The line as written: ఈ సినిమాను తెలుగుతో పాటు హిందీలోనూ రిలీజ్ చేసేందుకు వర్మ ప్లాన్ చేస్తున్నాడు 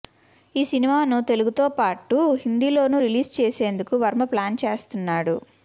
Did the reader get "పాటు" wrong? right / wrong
right